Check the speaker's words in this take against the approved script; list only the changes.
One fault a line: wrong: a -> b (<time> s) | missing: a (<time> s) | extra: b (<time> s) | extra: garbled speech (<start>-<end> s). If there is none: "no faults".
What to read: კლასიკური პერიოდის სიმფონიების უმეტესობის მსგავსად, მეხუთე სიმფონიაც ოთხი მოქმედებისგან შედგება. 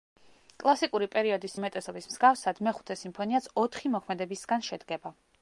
missing: სიმფონიების (1.6 s)